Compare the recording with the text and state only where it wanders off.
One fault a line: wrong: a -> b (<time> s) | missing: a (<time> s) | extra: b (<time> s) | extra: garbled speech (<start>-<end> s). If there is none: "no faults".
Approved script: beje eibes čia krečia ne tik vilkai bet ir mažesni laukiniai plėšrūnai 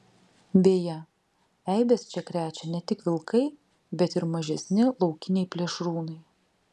no faults